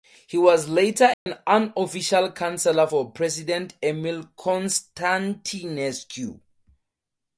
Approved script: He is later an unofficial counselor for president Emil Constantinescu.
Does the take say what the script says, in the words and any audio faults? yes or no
no